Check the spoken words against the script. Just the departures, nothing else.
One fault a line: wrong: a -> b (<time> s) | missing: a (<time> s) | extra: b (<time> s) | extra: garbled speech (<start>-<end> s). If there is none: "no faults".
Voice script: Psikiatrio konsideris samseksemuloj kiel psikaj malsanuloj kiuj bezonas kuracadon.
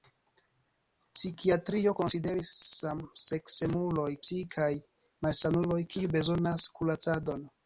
missing: kiel (4.1 s)